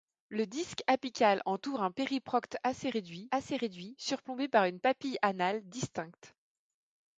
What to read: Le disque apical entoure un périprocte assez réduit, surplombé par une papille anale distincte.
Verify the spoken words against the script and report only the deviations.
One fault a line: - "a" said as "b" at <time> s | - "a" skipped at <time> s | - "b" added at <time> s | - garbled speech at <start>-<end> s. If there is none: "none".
- "assez réduit" added at 3.3 s